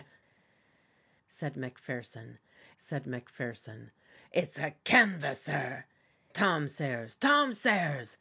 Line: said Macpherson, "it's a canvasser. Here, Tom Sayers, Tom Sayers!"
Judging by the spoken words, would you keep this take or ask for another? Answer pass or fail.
fail